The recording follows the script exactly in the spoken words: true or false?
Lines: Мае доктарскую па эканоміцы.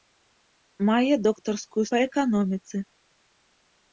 true